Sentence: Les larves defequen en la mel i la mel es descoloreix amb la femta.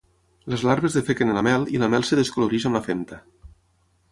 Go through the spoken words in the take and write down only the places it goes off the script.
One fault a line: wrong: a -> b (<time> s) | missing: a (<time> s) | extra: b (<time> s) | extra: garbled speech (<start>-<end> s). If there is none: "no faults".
no faults